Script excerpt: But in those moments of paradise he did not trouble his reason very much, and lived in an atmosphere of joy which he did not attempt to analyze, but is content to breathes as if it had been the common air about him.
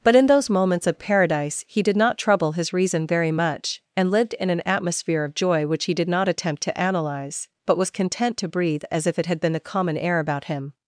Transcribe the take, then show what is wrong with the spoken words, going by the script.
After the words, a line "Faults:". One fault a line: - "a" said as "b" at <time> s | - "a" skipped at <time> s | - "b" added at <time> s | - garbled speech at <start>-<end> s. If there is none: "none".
But in those moments of paradise he did not trouble his reason very much, and lived in an atmosphere of joy which he did not attempt to analyze, but was content to breathe as if it had been the common air about him.
Faults:
- "is" said as "was" at 7.8 s
- "breathes" said as "breathe" at 8.5 s